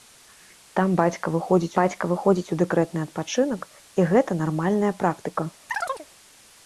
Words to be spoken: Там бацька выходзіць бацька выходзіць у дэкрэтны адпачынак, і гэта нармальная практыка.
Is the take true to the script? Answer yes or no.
yes